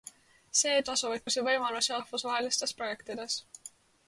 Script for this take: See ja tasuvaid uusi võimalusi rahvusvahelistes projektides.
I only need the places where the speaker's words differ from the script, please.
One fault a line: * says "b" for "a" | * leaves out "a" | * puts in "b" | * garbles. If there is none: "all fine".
all fine